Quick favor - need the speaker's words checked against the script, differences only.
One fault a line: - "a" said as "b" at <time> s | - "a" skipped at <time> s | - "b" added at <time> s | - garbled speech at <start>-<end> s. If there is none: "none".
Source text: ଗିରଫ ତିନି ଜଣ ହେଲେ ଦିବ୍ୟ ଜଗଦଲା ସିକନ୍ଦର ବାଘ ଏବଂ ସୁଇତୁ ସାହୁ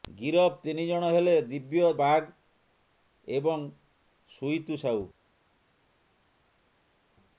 - "ଜଗଦଲା ସିକନ୍ଦର" skipped at 1.9 s